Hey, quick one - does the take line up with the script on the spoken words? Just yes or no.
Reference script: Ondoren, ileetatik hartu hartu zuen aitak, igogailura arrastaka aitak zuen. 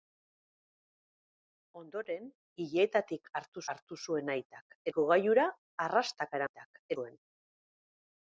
yes